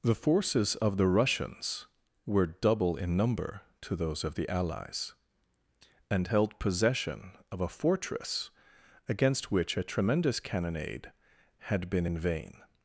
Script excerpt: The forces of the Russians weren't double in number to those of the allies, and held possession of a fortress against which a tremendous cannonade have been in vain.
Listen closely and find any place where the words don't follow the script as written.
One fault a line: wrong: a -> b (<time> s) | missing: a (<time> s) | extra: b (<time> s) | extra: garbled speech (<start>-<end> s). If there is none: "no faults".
wrong: weren't -> were (2.2 s)
wrong: have -> had (11.6 s)